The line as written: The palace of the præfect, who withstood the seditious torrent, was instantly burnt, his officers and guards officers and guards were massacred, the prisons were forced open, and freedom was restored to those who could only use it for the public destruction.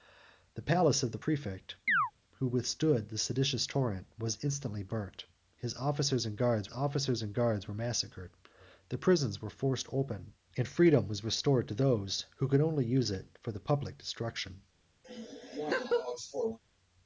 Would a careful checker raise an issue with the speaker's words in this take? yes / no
no